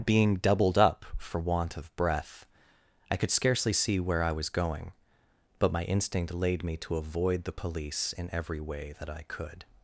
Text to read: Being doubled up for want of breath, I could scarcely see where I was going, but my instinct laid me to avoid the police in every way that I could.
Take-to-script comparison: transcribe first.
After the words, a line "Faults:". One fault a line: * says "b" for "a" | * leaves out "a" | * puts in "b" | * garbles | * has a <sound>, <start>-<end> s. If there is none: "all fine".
Being doubled up for want of breath, I could scarcely see where I was going, but my instinct laid me to avoid the police in every way that I could.
Faults:
all fine